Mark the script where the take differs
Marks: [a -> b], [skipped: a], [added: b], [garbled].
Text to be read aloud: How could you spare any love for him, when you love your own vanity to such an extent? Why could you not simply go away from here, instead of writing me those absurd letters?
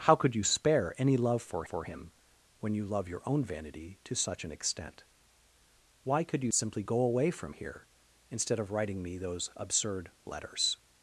How could you spare any love for [added: for] him, when you love your own vanity to such an extent? Why could you [skipped: not] simply go away from here, instead of writing me those absurd letters?